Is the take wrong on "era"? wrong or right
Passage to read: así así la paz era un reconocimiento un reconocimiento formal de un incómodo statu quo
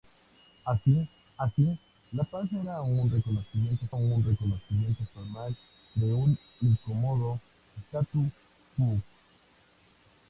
right